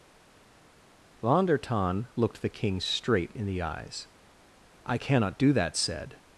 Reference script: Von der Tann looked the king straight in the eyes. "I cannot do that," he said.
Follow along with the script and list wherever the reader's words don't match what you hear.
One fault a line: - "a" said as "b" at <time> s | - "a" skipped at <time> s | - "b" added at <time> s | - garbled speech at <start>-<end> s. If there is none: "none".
- "he" skipped at 5.8 s